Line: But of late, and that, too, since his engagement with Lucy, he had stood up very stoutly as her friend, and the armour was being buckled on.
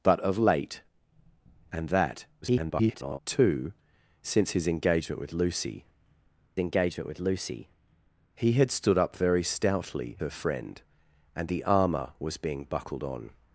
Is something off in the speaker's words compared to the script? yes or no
yes